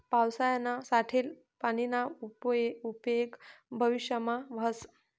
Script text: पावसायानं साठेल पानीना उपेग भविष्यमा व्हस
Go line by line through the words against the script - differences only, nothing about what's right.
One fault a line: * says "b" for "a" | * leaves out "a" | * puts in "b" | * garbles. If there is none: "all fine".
all fine